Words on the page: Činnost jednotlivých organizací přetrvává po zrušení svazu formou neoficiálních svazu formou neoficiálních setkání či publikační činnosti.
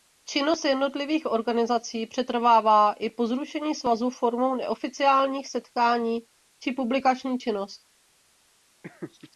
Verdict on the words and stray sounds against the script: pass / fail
fail